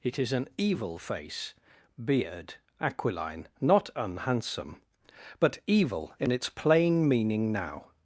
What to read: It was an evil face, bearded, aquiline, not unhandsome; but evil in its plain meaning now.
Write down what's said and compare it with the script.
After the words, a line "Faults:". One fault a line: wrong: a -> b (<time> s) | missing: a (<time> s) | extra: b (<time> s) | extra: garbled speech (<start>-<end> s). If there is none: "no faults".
It is an evil face, beard, aquiline, not unhandsome; but evil in its plain meaning now.
Faults:
wrong: was -> is (0.2 s)
wrong: bearded -> beard (2.0 s)